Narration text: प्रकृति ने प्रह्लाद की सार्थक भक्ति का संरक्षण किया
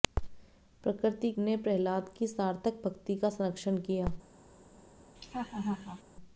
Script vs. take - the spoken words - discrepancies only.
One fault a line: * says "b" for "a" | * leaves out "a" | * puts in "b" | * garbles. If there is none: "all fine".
all fine